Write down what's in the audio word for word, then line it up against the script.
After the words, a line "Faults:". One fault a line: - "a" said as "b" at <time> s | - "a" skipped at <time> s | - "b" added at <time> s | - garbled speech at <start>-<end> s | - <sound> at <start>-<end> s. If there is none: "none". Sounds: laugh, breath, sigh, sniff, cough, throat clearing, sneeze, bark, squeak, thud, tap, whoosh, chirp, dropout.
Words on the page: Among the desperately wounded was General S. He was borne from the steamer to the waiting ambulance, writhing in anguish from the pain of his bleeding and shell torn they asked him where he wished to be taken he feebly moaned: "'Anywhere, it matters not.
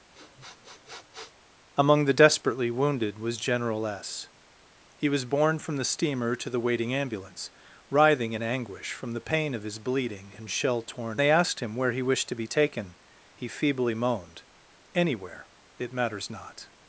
Among the desperately wounded was General S. He was borne from the steamer to the waiting ambulance, writhing in anguish from the pain of his bleeding and shell torn they asked him where he wished to be taken he feebly moaned: "'Anywhere, it matters not.
Faults:
- sniff at 0.1-1.4 s